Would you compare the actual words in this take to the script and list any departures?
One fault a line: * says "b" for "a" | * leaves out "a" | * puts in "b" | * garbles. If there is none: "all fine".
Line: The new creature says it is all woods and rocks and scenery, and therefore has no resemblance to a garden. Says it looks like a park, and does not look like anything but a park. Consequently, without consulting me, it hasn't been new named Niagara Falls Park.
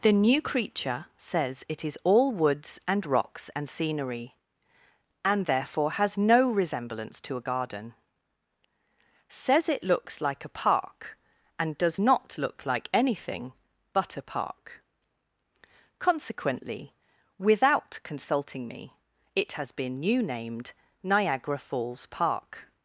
* says "has" for "hasn't"